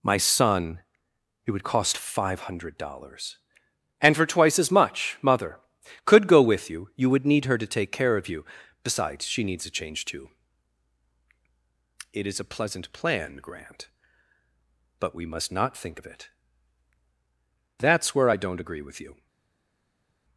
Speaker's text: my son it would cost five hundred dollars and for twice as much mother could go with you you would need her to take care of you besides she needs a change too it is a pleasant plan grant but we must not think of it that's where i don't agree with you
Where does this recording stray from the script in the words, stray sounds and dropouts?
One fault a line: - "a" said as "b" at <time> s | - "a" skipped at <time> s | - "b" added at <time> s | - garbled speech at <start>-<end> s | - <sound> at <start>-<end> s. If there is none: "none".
none